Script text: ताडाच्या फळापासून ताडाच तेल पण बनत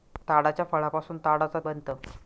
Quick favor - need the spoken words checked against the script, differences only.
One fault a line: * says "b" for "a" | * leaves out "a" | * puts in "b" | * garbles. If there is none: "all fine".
* leaves out "तेल पण"